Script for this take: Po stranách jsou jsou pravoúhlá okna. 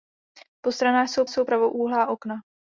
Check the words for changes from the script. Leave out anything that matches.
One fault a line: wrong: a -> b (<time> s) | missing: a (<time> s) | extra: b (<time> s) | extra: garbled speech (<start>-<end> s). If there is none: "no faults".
no faults